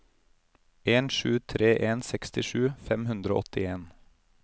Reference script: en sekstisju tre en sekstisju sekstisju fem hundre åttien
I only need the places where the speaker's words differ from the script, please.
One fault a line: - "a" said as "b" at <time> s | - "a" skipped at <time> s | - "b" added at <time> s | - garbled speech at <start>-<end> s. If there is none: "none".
- "sekstisju" said as "sju" at 1.1 s
- "sekstisju" skipped at 2.6 s
- "og" added at 3.3 s